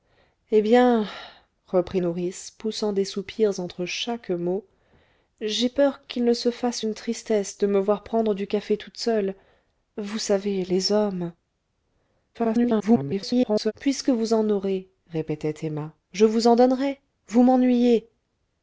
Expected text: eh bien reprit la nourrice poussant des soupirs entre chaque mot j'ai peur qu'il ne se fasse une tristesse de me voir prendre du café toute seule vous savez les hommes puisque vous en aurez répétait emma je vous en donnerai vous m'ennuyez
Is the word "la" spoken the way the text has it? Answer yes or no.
no